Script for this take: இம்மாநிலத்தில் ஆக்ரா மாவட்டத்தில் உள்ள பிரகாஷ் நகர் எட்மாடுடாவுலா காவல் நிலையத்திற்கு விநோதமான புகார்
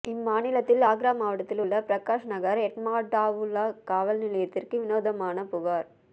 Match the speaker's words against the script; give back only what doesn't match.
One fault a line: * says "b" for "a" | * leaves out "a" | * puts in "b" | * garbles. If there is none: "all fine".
all fine